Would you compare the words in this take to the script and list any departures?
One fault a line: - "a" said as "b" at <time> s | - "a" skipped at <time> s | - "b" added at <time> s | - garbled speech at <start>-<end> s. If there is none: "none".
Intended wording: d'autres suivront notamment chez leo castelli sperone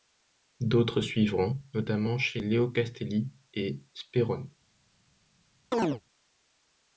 - "et" added at 3.5 s